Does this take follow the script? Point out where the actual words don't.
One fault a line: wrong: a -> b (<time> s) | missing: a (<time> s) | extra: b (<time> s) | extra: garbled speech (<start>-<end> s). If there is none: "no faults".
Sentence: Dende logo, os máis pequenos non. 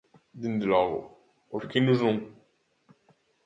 missing: máis (1.6 s)